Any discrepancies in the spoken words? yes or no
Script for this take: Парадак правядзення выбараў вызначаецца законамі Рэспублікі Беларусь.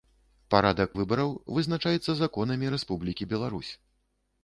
yes